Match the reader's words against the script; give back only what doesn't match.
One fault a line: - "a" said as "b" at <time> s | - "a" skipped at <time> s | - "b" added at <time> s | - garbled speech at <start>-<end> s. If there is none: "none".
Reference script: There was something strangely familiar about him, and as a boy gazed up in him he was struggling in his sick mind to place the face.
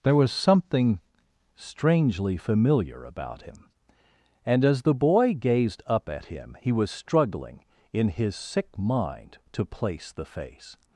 - "a" said as "the" at 4.8 s
- "in" said as "at" at 6.1 s